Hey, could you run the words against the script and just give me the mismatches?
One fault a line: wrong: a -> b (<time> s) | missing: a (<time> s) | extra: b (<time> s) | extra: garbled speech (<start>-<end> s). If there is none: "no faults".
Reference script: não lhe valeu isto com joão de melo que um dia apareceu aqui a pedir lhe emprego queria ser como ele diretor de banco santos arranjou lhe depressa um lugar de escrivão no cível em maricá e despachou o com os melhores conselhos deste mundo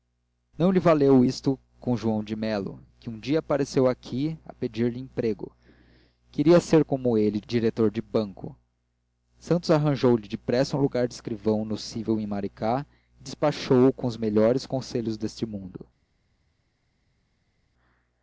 no faults